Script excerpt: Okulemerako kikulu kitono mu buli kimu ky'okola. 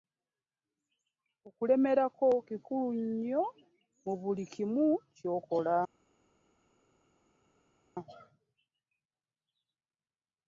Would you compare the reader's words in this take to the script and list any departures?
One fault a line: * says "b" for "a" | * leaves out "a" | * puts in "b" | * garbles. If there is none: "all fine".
* says "nnyo" for "kitono"